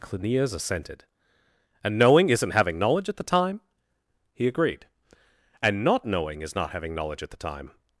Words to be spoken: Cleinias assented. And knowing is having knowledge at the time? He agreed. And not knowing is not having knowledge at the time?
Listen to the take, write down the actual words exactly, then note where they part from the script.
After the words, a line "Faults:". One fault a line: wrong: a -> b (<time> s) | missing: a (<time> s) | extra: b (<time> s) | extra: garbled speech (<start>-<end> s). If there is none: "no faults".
Cleinias assented. And knowing isn't having knowledge at the time? He agreed. And not knowing is not having knowledge at the time?
Faults:
wrong: is -> isn't (2.3 s)